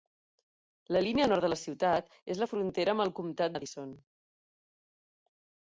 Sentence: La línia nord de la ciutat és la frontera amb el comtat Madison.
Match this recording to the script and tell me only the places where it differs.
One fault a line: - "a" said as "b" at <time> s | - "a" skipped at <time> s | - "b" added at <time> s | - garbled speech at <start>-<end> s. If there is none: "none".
none